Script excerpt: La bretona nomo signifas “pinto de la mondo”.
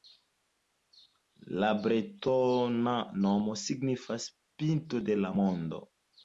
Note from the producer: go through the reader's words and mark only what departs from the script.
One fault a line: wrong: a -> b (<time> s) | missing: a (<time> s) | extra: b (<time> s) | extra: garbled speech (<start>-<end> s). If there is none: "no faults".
no faults